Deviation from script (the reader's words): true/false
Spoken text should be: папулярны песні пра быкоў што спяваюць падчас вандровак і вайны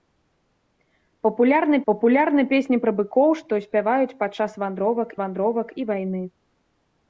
true